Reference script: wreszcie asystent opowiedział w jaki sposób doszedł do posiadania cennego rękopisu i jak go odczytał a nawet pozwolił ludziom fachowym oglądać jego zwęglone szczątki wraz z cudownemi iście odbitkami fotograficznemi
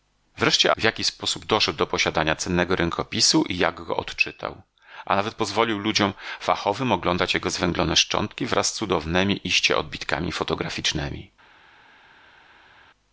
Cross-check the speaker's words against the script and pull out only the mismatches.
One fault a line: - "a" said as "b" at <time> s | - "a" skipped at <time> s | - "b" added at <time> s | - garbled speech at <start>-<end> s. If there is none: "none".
- "asystent opowiedział" skipped at 0.7 s